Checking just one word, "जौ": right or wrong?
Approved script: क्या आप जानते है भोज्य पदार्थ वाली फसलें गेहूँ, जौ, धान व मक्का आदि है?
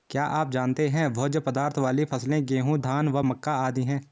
wrong